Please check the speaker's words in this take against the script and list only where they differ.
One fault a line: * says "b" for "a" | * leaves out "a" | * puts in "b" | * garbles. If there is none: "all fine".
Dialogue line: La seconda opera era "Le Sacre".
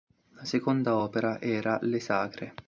all fine